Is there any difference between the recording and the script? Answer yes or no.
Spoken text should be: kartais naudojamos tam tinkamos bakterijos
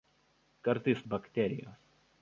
yes